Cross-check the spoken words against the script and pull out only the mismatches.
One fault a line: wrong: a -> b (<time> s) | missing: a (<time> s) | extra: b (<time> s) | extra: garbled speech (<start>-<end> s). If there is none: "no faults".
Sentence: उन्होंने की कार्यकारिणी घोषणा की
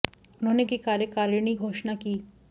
no faults